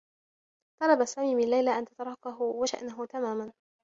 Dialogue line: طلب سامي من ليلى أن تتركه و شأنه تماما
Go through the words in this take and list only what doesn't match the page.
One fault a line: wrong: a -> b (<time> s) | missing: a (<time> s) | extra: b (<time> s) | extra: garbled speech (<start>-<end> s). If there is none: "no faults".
no faults